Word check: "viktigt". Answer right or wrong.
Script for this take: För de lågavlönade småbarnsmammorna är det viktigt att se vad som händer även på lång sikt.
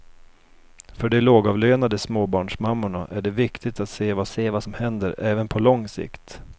right